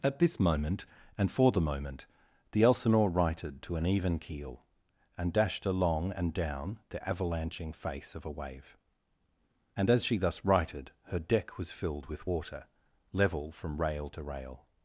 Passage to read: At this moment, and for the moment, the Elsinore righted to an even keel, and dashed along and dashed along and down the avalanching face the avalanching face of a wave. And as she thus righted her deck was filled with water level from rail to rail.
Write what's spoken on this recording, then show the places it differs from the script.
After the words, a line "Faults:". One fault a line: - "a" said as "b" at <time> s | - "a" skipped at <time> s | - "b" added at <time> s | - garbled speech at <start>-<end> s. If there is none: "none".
At this moment, and for the moment, the Elsinore righted to an even keel, and dashed along and down the avalanching face of a wave. And as she thus righted her deck was filled with water level from rail to rail.
Faults:
- "dashed along and" skipped at 6.3 s
- "the avalanching face" skipped at 8.2 s